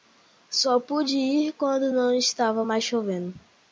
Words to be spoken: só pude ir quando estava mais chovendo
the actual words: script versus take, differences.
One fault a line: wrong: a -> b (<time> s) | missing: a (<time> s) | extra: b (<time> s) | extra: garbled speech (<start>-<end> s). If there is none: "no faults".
extra: não (1.9 s)